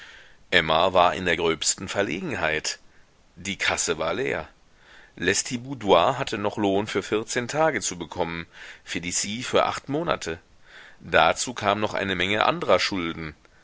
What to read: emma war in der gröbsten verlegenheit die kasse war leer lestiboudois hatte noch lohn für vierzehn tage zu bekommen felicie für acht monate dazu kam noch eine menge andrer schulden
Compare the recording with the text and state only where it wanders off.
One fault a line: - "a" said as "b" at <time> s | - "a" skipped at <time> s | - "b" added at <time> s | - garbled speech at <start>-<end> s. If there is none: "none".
none